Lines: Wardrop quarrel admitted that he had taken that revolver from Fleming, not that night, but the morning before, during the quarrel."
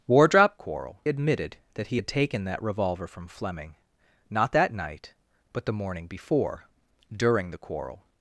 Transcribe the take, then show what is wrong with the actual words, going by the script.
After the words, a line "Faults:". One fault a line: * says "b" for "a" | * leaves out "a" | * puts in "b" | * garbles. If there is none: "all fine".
Wardrop quarrel admitted that he had taken that revolver from Fleming, not that night, but the morning before, during the quarrel."
Faults:
all fine